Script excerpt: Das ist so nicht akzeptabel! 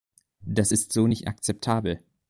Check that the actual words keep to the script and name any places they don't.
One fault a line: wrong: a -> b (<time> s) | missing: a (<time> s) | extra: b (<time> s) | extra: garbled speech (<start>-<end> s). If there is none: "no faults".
no faults